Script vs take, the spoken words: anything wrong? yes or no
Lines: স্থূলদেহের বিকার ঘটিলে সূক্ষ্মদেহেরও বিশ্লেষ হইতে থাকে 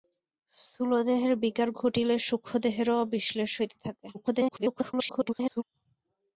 yes